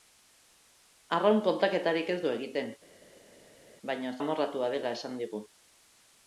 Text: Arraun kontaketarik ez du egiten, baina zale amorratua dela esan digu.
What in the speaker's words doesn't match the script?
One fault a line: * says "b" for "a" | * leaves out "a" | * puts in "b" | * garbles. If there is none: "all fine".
* leaves out "zale"